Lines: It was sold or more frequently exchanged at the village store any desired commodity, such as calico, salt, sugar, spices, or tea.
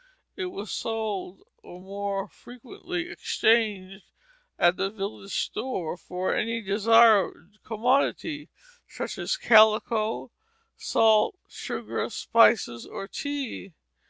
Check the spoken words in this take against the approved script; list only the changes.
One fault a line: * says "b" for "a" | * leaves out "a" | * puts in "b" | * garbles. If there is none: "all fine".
* puts in "for"